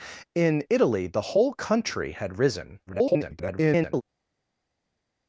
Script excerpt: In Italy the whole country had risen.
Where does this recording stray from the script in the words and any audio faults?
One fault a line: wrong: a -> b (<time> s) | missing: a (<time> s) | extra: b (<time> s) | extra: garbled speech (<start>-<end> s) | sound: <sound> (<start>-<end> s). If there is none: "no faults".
extra: garbled speech (2.9-4.0 s)